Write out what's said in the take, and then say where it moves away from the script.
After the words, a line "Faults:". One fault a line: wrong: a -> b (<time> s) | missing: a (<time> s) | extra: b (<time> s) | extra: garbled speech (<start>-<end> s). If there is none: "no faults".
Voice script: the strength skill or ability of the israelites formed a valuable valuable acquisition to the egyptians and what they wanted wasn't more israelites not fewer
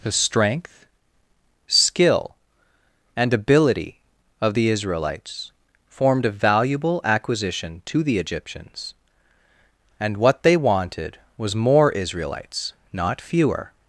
the strength skill and ability of the israelites formed a valuable acquisition to the egyptians and what they wanted was more israelites not fewer
Faults:
wrong: or -> and (3.2 s)
missing: valuable (7.0 s)
wrong: wasn't -> was (11.4 s)